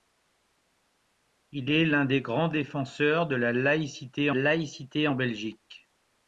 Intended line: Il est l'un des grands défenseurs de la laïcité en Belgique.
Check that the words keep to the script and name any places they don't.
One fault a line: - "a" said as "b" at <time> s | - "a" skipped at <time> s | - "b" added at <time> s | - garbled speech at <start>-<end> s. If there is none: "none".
- "laïcité" added at 4.3 s